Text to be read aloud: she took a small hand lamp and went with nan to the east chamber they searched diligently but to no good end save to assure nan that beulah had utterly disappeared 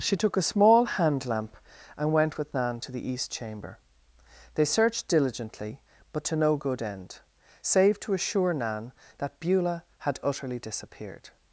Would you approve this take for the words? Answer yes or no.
yes